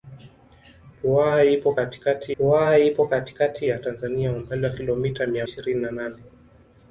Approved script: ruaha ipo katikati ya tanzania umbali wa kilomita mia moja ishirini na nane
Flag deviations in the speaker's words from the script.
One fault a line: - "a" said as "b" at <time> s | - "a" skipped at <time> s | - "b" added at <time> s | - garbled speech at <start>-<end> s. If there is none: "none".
- "ruaha ipo katikati" added at 2.4 s
- "moja" skipped at 5.5 s